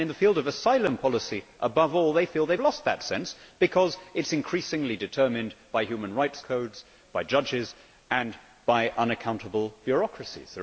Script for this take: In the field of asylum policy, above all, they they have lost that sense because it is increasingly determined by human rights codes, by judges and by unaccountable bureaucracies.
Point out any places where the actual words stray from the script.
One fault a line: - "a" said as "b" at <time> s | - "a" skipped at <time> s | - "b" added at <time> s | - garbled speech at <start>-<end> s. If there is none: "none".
- "feel" added at 2.2 s